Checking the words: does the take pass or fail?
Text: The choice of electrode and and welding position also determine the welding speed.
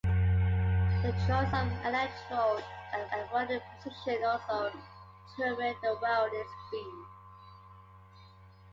pass